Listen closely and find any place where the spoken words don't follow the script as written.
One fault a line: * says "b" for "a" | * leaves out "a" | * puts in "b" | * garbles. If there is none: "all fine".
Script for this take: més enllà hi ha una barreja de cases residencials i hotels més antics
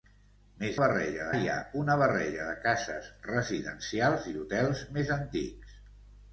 * says "barreja" for "enllà"